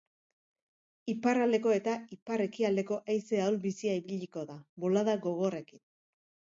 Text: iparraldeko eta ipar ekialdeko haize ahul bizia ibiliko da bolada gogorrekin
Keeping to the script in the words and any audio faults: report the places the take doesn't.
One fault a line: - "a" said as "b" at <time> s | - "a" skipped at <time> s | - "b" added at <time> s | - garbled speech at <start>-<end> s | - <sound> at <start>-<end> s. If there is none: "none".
none